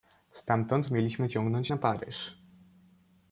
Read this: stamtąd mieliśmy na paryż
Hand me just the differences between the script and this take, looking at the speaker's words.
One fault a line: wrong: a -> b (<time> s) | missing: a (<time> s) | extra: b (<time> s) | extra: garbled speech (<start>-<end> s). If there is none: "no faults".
extra: ciągnąć (1.3 s)